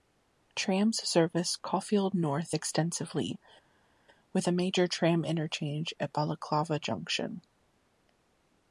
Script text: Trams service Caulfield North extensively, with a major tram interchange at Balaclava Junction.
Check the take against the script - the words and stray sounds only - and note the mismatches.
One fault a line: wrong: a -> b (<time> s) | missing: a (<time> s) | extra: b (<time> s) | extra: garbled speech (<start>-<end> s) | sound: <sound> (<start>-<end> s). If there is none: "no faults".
no faults